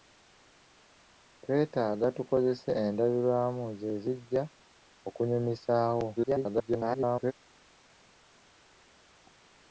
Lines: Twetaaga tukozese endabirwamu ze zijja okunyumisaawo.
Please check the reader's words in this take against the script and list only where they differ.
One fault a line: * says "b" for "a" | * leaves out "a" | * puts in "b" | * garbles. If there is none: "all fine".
* garbles